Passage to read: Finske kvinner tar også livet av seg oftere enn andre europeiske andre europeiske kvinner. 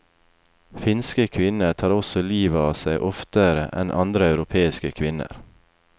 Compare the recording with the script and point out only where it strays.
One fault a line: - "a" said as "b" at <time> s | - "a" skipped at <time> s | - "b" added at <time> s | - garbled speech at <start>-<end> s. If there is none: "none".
- "andre europeiske" skipped at 4.9 s